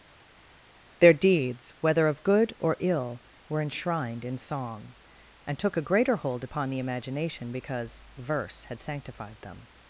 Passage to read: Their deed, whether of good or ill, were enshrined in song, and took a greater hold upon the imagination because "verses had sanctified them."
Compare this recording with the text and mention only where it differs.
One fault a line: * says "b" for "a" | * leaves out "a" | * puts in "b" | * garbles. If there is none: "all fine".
* says "deeds" for "deed"
* says "verse" for "verses"